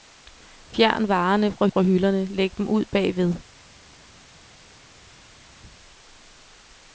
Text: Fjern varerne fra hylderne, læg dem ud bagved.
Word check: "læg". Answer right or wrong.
right